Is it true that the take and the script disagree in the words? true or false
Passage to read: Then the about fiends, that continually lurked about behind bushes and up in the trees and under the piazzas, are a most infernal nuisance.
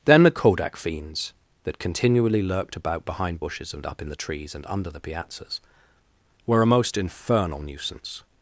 true